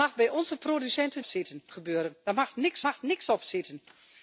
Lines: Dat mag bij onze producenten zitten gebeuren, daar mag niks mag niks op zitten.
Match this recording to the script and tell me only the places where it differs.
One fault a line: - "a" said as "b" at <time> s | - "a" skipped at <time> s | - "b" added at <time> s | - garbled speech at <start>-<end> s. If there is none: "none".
none